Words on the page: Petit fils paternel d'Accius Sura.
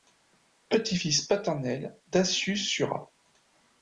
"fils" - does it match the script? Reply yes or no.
yes